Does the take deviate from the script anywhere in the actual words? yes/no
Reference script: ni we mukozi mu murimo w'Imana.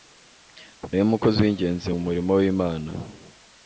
yes